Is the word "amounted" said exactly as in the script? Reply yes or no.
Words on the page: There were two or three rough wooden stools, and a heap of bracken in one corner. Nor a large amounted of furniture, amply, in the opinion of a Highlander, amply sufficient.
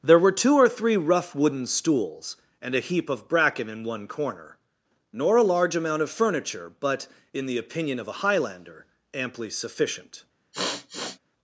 no